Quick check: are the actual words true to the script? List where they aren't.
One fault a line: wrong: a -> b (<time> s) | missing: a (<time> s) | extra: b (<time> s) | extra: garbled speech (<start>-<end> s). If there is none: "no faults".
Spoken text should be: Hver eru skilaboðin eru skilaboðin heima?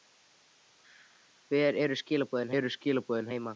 no faults